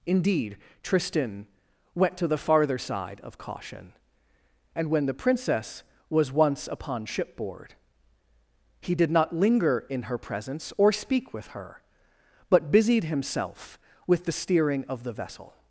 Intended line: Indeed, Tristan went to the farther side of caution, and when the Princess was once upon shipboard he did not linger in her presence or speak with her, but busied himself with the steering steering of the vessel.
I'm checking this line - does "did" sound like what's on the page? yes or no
yes